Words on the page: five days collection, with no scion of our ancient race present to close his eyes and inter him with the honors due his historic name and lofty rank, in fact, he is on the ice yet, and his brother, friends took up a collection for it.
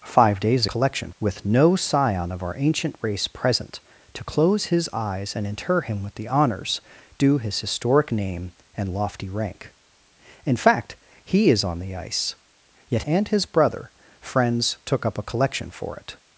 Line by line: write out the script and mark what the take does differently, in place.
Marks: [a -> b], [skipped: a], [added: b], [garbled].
five days collection, with no scion of our ancient race present to close his eyes and inter him with the honors due his historic name and lofty rank, in fact, he is on the ice yet, and his brother, friends took up a collection for it.